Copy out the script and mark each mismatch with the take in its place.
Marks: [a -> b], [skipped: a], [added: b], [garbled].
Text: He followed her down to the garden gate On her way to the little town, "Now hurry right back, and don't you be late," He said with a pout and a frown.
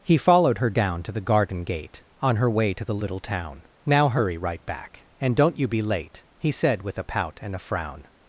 He followed her down to the garden gate On her way to the little town, "Now hurry right back, and don't you be late," He said with a pout and a frown.